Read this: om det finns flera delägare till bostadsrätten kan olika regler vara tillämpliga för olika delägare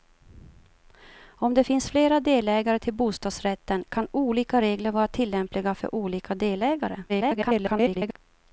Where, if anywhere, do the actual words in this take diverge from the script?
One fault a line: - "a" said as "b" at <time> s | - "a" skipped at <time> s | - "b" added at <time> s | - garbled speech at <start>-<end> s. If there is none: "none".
- garbled speech at 7.1-8.2 s